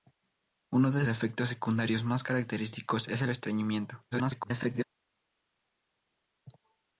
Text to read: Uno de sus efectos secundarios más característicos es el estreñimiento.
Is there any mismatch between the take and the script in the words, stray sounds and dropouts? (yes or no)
yes